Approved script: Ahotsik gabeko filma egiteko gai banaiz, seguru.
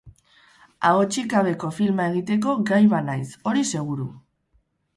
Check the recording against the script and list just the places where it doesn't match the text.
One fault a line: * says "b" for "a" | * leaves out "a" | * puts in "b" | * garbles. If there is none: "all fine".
* puts in "hori"